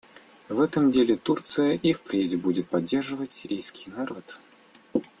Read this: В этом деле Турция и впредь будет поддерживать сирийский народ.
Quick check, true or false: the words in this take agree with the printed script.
true